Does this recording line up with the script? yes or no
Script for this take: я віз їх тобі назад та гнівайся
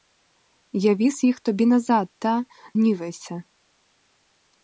yes